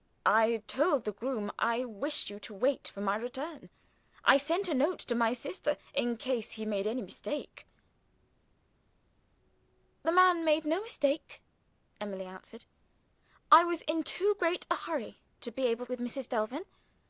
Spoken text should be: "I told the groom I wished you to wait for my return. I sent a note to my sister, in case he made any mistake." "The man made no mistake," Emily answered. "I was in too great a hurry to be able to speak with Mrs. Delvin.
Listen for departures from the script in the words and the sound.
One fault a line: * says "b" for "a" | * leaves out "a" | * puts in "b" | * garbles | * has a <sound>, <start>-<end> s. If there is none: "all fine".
* leaves out "to speak"